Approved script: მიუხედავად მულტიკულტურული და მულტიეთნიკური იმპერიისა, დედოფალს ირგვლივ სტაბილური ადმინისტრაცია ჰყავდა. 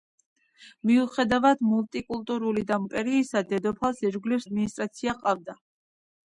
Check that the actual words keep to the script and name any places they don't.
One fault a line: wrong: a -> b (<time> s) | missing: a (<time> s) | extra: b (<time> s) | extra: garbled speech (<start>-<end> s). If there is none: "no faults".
missing: მულტიეთნიკური (2.8 s)
missing: სტაბილური (4.5 s)